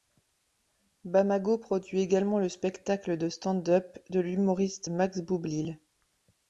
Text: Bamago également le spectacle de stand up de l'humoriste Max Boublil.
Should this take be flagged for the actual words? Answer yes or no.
yes